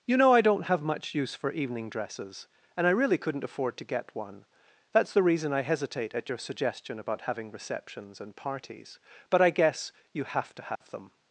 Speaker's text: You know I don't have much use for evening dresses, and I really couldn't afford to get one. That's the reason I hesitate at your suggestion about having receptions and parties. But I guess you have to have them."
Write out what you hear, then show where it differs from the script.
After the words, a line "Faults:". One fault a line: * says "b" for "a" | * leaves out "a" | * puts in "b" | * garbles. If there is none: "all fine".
You know I don't have much use for evening dresses, and I really couldn't afford to get one. That's the reason I hesitate at your suggestion about having receptions and parties. But I guess you have to have them."
Faults:
all fine